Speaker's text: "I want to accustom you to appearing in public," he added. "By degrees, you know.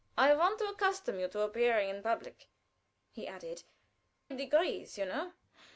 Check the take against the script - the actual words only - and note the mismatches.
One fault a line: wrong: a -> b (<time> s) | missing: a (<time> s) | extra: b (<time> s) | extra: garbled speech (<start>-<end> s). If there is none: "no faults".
missing: By (3.6 s)